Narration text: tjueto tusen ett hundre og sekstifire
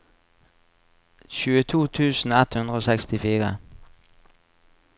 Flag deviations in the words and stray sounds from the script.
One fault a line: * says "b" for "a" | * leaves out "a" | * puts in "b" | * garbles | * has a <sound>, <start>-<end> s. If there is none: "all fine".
all fine